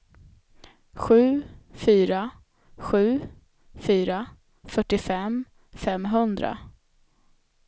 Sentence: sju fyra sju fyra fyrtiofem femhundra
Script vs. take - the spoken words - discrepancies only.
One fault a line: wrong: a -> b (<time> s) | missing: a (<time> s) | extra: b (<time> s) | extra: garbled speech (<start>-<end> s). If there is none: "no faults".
no faults